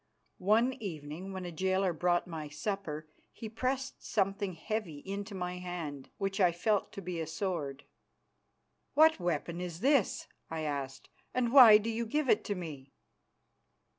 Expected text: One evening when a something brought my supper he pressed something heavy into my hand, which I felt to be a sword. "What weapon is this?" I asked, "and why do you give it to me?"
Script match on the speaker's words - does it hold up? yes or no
no